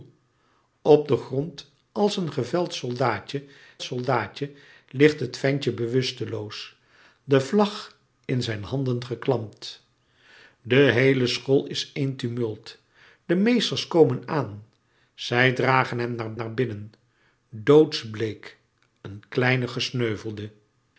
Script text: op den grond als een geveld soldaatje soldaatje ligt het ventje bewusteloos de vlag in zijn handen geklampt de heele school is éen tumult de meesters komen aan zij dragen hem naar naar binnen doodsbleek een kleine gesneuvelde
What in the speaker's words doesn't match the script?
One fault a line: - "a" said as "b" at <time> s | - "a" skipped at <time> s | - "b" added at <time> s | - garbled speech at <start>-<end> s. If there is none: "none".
none